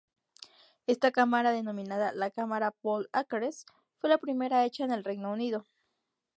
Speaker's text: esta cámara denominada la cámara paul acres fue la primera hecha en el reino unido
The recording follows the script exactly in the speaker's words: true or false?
true